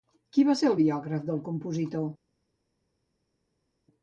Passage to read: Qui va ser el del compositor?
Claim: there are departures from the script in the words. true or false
true